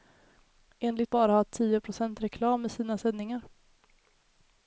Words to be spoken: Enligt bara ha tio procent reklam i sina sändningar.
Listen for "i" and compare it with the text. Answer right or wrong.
right